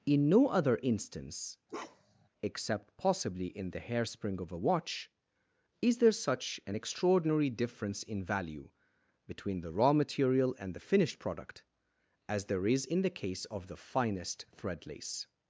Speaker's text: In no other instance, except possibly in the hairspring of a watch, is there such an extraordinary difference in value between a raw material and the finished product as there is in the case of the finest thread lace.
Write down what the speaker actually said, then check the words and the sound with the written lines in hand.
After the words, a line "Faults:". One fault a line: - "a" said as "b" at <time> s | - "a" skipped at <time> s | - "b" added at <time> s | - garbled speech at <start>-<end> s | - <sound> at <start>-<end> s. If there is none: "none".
In no other instance, except possibly in the hairspring of a watch, is there such an extraordinary difference in value between the raw material and the finished product as there is in the case of the finest thread lace.
Faults:
- bark at 1.7-2.3 s
- "a" said as "the" at 9.6 s